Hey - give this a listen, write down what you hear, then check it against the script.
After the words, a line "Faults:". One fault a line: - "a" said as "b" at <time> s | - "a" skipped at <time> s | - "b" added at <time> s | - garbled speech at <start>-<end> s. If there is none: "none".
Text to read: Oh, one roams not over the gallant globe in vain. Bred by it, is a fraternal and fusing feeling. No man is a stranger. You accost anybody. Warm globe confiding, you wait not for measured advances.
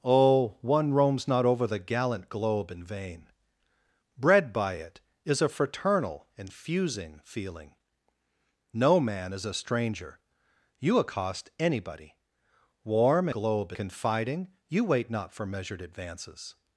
Oh, one roams not over the gallant globe in vain. Bred by it, is a fraternal and fusing feeling. No man is a stranger. You accost anybody. Warm globe confiding, you wait not for measured advances.
Faults:
none